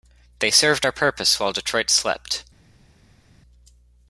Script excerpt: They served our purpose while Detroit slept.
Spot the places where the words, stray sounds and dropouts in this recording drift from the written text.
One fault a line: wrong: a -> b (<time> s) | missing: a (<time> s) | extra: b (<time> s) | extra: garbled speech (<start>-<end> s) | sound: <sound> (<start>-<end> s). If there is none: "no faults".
no faults